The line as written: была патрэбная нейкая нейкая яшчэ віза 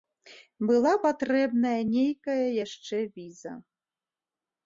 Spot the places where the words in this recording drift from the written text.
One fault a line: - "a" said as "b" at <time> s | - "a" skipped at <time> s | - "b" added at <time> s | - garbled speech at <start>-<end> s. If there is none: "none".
- "нейкая" skipped at 2.5 s